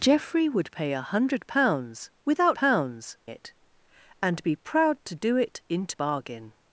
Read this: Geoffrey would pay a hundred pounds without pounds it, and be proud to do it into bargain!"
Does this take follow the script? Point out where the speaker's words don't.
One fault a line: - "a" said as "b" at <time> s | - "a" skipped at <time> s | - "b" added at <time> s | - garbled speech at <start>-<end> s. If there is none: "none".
none